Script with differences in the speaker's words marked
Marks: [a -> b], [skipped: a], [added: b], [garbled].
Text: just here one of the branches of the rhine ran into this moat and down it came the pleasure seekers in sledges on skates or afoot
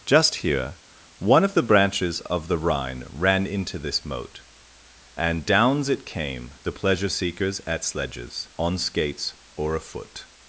just here one of the branches of the rhine ran into this moat and [down -> downs] it came the pleasure seekers [in -> at] sledges on skates or afoot